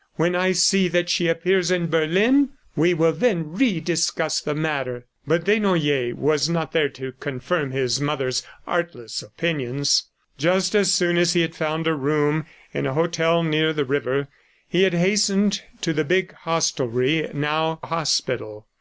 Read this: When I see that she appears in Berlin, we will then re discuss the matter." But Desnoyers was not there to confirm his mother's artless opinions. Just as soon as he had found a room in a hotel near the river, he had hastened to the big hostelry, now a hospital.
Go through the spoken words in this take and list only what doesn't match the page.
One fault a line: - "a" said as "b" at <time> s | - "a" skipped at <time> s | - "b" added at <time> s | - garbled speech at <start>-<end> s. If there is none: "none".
none